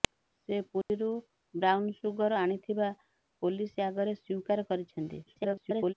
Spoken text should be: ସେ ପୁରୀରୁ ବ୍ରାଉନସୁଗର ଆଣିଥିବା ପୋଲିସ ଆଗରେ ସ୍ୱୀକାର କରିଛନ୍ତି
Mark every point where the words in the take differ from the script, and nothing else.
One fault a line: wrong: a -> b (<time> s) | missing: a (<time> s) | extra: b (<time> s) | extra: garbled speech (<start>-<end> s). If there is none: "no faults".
extra: garbled speech (5.3-5.9 s)